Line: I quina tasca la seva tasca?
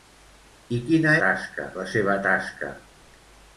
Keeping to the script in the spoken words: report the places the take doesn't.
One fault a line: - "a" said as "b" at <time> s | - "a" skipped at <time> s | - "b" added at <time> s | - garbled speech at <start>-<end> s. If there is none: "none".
none